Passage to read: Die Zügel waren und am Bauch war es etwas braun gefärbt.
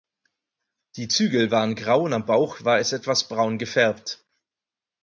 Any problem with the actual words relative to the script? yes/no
yes